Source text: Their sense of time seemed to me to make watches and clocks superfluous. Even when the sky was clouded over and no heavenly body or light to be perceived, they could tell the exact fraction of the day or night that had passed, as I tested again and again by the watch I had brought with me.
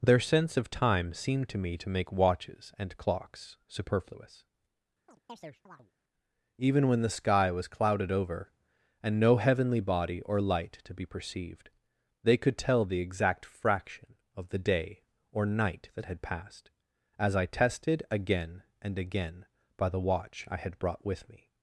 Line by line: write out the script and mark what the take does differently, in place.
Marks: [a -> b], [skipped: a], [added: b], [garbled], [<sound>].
Their sense of time seemed to me to make watches and clocks superfluous. [chirp] Even when the sky was clouded over and no heavenly body or light to be perceived, they could tell the exact fraction of the day or night that had passed, as I tested again and again by the watch I had brought with me.